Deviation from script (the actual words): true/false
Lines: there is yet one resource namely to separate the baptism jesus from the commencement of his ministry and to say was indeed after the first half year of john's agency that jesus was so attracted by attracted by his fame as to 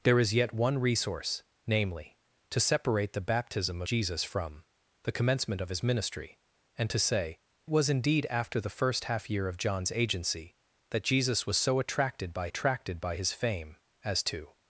false